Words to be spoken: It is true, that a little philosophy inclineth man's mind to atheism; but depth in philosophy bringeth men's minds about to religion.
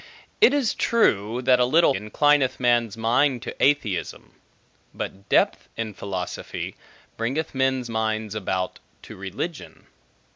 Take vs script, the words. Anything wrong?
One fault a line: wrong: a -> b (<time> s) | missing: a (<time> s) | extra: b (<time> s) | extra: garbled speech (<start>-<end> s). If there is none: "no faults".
missing: philosophy (1.9 s)